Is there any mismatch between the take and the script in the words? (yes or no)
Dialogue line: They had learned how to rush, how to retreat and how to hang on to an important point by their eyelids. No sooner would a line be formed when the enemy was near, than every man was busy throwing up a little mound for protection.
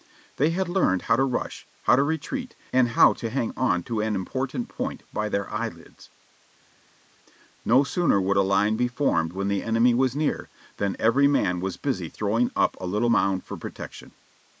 no